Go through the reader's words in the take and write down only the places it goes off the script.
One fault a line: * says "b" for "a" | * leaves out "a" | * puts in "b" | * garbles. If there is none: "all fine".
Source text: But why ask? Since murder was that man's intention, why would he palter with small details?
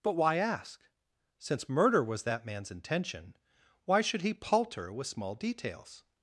* says "should" for "would"